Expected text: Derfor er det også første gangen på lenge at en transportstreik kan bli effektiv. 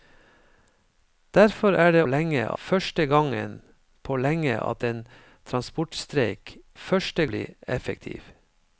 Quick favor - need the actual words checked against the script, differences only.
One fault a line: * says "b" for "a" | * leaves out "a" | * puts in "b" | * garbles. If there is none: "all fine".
* says "lenge" for "også"
* says "første" for "kan"